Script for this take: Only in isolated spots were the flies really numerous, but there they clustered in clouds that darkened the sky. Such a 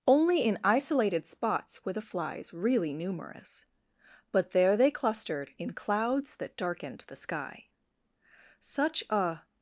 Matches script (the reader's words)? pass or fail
pass